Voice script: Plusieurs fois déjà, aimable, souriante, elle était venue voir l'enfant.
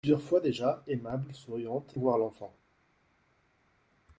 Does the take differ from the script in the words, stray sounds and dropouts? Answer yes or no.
yes